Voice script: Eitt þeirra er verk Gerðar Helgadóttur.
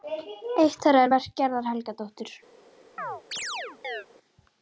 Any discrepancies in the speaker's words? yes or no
no